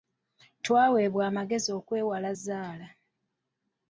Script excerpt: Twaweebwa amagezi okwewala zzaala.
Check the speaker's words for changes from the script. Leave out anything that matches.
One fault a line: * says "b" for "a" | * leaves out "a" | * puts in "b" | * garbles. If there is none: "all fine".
all fine